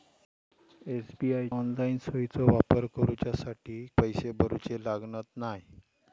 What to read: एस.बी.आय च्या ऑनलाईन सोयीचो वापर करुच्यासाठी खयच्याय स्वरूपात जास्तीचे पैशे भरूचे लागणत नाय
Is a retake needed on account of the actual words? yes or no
yes